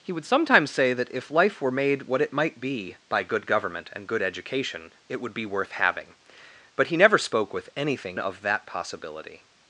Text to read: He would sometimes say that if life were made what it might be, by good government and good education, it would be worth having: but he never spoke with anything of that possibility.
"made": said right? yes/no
yes